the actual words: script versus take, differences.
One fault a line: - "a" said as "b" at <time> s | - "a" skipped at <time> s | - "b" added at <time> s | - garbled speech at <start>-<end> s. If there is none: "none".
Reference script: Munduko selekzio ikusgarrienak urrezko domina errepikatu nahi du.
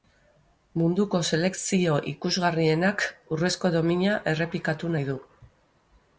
none